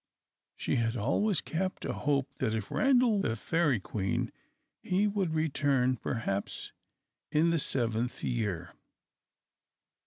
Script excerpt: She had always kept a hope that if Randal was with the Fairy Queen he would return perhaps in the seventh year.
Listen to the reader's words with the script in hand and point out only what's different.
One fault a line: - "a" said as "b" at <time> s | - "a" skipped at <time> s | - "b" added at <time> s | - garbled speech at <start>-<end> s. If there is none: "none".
- "was with" skipped at 3.2 s